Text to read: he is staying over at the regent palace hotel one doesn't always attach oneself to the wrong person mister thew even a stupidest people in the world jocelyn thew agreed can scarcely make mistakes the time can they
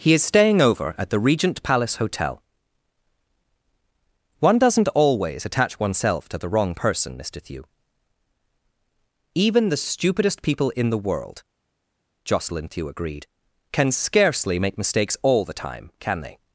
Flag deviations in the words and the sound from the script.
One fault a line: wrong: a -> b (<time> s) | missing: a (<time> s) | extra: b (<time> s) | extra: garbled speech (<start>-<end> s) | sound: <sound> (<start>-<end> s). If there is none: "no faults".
wrong: a -> the (9.7 s)
extra: all (15.2 s)